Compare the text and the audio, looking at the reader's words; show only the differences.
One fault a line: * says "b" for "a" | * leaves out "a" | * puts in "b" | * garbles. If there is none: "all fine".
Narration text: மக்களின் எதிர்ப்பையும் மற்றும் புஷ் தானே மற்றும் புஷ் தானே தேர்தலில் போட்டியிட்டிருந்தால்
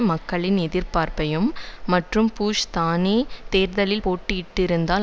* leaves out "மற்றும் புஷ் தானே"